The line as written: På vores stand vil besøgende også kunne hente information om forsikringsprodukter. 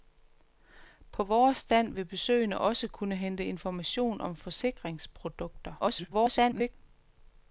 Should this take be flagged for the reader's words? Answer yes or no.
yes